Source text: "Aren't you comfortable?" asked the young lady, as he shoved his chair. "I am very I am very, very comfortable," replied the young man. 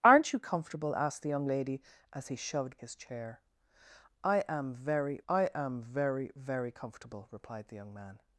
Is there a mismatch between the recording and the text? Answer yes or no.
no